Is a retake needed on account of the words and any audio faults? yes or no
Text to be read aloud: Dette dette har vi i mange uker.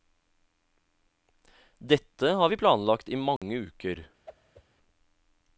yes